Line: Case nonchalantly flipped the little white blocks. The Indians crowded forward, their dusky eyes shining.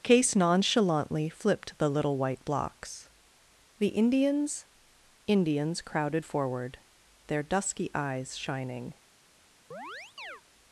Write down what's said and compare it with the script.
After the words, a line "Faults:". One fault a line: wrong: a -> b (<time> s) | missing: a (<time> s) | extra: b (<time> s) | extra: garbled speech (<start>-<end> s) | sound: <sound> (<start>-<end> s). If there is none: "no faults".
Case nonchalantly flipped the little white blocks. The Indians Indians crowded forward, their dusky eyes shining.
Faults:
extra: Indians (5.3 s)
sound: chirp (9.7-10.4 s)